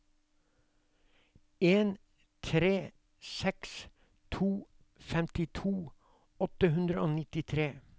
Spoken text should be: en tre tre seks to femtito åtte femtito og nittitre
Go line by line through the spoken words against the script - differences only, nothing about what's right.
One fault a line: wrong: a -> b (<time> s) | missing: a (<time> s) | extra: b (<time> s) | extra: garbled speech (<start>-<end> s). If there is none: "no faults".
missing: tre (2.9 s)
wrong: femtito -> hundre (6.8 s)